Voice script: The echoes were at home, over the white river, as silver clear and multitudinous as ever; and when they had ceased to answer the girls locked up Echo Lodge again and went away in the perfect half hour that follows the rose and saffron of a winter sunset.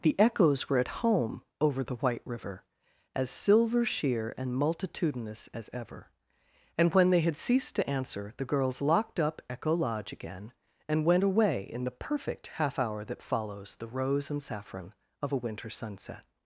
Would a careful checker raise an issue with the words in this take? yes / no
yes